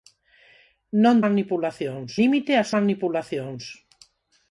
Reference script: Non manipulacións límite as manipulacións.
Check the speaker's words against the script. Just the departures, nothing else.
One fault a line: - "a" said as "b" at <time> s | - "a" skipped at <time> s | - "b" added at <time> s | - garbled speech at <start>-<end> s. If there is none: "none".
none